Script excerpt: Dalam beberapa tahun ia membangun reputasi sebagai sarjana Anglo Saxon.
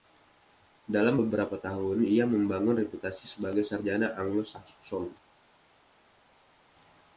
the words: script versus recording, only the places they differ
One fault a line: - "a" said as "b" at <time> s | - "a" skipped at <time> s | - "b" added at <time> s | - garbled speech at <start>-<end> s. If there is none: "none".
none